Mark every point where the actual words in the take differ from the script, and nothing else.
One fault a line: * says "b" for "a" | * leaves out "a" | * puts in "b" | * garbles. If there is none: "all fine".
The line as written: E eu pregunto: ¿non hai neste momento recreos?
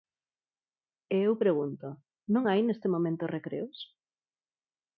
all fine